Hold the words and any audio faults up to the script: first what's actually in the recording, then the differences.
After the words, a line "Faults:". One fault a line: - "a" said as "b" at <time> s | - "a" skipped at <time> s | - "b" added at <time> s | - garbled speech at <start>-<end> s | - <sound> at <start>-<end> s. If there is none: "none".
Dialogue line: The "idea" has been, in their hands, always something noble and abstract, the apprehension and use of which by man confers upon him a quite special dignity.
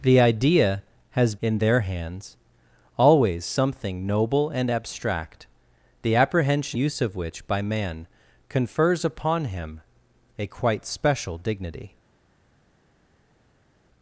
The "idea" has in their hands, always something noble and abstract, the apprehension use of which by man confers upon him a quite special dignity.
Faults:
- "been" skipped at 1.4 s
- "and" skipped at 6.8 s